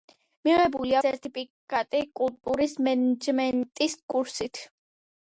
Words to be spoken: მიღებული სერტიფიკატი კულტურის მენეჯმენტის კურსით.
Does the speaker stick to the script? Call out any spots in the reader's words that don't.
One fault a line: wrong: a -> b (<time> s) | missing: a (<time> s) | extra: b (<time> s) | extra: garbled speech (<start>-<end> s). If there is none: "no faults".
no faults